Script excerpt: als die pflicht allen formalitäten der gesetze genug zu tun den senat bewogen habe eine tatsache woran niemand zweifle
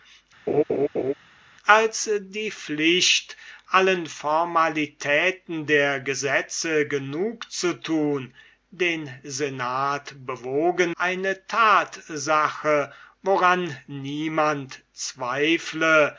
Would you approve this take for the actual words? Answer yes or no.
no